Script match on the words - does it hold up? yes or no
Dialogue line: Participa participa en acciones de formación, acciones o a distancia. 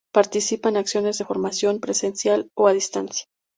no